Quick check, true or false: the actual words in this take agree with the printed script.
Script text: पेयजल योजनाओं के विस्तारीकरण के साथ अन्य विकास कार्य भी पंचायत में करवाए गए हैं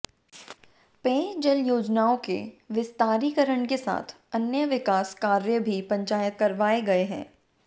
false